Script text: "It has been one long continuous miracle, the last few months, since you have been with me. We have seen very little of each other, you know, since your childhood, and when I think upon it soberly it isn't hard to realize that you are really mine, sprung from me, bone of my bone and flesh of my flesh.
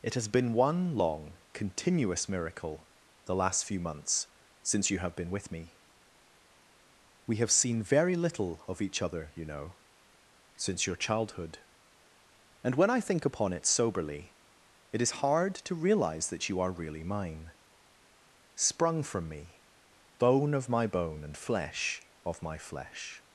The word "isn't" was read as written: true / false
false